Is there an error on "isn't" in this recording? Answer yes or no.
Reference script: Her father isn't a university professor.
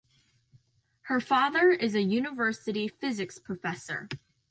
yes